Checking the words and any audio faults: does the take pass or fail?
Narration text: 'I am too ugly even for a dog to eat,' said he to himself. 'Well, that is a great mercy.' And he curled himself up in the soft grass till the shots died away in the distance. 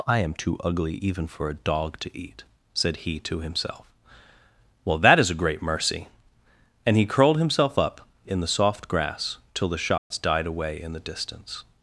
fail